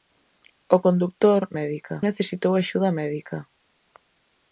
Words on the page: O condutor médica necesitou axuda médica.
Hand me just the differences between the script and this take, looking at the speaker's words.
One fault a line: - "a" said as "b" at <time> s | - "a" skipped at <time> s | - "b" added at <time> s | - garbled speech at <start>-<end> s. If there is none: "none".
none